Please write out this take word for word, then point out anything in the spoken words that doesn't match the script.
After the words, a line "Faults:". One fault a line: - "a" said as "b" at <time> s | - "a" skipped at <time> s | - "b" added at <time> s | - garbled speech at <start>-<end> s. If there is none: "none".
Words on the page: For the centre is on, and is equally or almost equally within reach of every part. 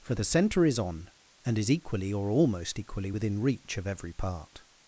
For the centre is on, and is equally or almost equally within reach of every part.
Faults:
none